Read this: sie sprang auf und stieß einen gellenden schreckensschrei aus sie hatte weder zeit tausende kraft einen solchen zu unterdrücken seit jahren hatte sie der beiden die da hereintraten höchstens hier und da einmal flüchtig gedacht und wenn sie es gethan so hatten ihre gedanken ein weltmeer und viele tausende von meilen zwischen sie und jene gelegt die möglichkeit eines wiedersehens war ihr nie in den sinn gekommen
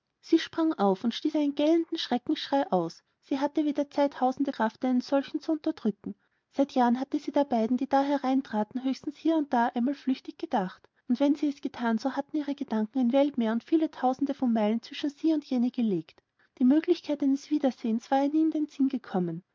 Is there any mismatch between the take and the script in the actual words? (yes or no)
no